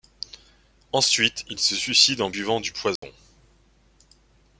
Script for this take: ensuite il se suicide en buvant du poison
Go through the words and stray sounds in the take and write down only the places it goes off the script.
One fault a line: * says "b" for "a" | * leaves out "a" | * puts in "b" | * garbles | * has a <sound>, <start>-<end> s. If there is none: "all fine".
* has a dropout, 3.0-3.0 s